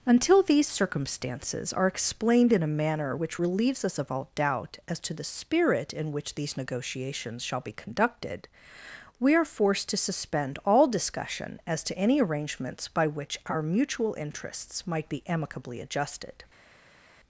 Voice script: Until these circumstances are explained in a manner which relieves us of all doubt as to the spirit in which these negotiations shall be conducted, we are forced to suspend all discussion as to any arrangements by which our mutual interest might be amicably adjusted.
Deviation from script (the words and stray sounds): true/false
true